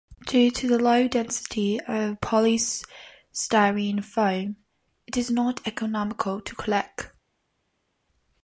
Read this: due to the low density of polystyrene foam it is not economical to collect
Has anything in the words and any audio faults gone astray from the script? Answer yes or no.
no